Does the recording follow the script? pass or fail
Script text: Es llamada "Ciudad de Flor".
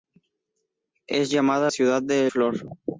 pass